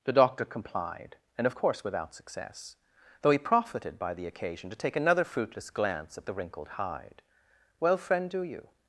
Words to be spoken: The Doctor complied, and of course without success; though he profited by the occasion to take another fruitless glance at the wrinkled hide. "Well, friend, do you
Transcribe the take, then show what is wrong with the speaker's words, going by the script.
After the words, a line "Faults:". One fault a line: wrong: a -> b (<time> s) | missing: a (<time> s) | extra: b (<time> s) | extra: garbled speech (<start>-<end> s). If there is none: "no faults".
The Doctor complied, and of course without success; though he profited by the occasion to take another fruitless glance at the wrinkled hide. "Well, friend, do you
Faults:
no faults